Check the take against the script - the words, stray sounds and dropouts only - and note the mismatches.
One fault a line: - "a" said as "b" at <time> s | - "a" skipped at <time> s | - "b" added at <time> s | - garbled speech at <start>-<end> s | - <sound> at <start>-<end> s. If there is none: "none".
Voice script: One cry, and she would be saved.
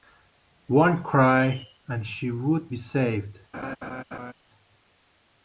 - laugh at 3.5-4.3 s